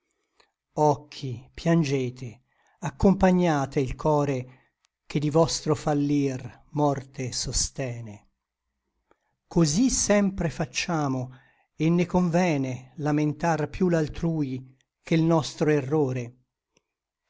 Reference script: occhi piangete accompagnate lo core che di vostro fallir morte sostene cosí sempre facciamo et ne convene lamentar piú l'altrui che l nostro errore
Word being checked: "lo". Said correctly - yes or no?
no